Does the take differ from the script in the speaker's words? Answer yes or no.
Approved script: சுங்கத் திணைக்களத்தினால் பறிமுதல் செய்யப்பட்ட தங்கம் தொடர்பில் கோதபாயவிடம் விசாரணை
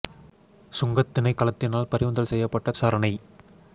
yes